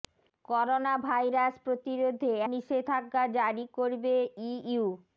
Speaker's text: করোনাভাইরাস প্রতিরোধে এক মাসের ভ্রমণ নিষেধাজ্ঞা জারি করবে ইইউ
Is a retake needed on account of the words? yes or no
yes